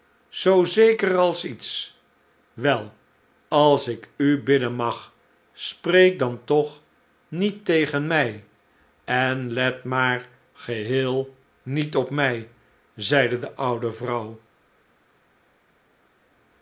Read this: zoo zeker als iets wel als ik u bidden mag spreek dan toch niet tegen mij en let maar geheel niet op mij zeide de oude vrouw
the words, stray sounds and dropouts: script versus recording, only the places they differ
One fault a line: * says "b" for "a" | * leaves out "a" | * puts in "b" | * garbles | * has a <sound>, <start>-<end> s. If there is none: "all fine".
all fine